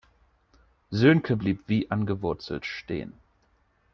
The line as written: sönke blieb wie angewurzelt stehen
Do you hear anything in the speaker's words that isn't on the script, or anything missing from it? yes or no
no